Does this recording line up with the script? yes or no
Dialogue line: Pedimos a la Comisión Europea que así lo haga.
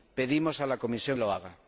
no